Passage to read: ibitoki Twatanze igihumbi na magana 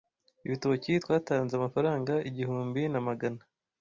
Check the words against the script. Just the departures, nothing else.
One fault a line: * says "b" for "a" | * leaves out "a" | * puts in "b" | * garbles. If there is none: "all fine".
* puts in "amafaranga"